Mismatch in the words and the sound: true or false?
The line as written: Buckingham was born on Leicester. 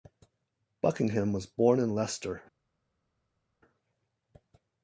true